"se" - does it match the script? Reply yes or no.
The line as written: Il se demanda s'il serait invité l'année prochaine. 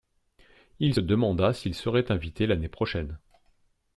no